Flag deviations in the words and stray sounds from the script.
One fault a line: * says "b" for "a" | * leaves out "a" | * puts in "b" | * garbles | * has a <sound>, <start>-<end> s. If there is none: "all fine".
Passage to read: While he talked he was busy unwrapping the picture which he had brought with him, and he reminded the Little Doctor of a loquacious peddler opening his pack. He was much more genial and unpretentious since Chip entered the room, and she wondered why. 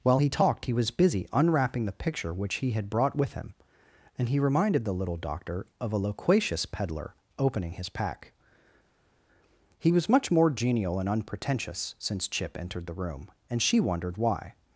all fine